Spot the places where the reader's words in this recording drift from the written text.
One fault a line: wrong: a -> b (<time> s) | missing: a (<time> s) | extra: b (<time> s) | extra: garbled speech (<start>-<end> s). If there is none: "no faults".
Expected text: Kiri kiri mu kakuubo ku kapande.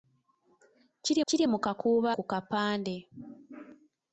no faults